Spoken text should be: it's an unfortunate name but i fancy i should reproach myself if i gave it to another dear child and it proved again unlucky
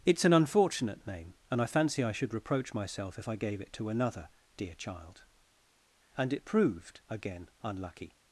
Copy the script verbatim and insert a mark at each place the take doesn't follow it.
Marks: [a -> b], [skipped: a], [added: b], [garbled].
it's an unfortunate name [but -> and] i fancy i should reproach myself if i gave it to another dear child and it proved again unlucky